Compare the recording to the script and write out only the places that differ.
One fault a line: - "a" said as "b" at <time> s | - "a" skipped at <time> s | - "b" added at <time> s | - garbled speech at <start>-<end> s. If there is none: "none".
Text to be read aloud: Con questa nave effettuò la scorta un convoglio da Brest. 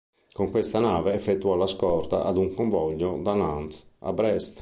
- "ad" added at 2.2 s
- "Nantes a" added at 3.3 s